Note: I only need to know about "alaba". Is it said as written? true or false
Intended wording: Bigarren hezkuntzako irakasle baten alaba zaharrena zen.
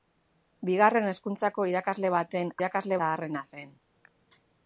false